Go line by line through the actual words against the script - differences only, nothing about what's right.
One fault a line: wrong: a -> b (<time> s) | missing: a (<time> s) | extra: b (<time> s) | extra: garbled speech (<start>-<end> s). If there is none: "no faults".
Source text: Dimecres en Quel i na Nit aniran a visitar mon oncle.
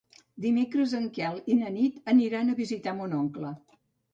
no faults